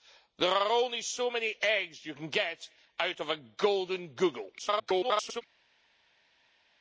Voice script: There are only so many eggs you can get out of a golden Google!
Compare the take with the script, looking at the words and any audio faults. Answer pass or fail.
fail